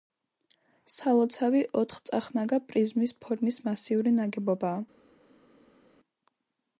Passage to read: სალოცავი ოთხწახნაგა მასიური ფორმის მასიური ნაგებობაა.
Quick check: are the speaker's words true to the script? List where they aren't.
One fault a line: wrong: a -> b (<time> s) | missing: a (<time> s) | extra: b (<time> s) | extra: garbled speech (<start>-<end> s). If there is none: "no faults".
wrong: მასიური -> პრიზმის (2.7 s)